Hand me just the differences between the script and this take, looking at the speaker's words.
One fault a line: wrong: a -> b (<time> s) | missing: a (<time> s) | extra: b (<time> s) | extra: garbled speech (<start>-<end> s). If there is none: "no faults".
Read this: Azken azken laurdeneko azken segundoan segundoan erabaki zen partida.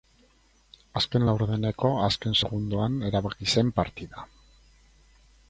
missing: azken (1.2 s)
missing: segundoan (3.0 s)